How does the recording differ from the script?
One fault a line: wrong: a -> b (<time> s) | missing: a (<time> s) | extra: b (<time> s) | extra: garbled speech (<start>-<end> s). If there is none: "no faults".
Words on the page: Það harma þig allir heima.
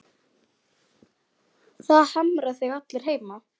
no faults